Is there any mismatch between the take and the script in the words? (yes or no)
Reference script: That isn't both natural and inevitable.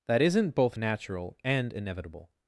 no